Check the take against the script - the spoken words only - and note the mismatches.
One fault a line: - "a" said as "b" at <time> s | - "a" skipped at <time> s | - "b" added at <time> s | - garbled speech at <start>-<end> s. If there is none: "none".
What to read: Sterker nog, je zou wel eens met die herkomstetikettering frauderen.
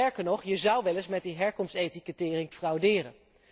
none